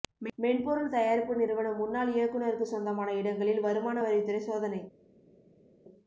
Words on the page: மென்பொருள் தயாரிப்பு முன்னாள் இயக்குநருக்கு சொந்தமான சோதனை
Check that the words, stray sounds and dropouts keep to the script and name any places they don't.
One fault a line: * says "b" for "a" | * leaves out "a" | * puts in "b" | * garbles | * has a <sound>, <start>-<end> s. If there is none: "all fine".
* puts in "நிறுவன"
* puts in "இடங்களில் வருமான வரித்துறை"